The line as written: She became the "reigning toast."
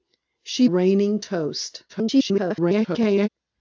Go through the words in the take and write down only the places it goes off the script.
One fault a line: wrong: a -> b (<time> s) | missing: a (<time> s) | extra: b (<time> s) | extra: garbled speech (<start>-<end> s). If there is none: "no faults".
missing: became the (0.7 s)
extra: garbled speech (1.9-3.3 s)